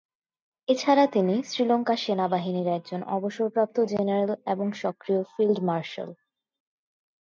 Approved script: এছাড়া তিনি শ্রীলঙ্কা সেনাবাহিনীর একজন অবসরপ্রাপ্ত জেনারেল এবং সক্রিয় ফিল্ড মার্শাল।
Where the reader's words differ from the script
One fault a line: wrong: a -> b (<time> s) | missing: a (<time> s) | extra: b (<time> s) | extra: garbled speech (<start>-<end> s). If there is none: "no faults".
no faults